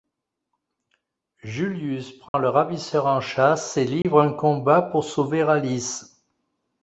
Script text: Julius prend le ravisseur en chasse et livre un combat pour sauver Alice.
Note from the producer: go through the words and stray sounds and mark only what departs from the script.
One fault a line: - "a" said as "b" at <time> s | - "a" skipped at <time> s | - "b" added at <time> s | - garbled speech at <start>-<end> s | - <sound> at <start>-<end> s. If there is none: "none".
- dropout at 2.3-2.3 s
- dropout at 4.0-4.0 s